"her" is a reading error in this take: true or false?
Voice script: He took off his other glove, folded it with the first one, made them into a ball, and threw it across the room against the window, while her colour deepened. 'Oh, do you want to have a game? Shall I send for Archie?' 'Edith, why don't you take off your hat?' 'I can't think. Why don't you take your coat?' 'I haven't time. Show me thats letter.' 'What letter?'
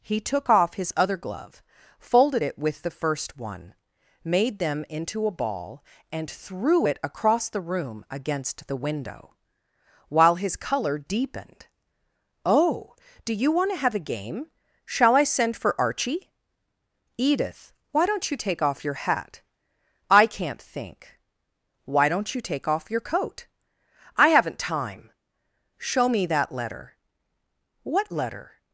true